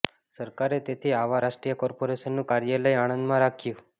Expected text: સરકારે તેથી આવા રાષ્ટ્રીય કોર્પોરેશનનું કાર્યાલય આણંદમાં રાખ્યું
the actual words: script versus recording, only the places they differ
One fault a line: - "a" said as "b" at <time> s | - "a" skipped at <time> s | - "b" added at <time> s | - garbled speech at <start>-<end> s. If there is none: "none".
none